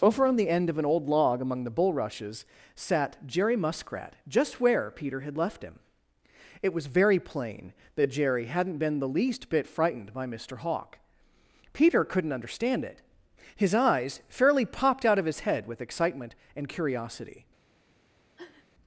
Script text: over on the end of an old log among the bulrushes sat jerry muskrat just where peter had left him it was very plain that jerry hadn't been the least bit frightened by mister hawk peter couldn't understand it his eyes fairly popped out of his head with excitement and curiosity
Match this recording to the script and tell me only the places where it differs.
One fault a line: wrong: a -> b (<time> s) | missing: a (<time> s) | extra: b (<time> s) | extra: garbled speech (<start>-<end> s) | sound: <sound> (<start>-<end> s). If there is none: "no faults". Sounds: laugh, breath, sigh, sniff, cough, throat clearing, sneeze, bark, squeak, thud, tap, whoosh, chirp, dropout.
sound: sniff (18.4-18.7 s)